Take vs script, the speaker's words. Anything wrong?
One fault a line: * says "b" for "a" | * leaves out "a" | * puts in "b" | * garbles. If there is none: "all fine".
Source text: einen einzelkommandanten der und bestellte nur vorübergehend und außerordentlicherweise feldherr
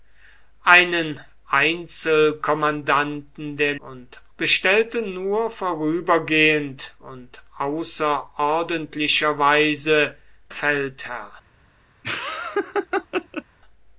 all fine